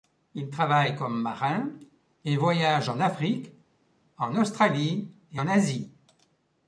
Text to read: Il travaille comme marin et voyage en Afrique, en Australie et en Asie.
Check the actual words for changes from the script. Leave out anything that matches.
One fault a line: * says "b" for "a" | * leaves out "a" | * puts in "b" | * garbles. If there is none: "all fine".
all fine